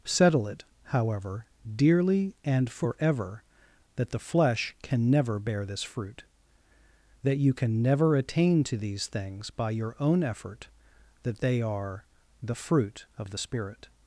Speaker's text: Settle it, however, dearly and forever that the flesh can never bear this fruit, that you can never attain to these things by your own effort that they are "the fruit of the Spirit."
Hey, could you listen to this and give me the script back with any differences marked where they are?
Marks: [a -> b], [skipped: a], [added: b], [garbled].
Settle it, however, dearly and forever that the flesh can never bear this fruit, that you can never attain to these things by your own effort that they are "the fruit of the Spirit."